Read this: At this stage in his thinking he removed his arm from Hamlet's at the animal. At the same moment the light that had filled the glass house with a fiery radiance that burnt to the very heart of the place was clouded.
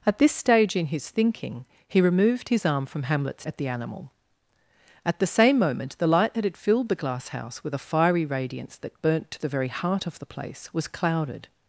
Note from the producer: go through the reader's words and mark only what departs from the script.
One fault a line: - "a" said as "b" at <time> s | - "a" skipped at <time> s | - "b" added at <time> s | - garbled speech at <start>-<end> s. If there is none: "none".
none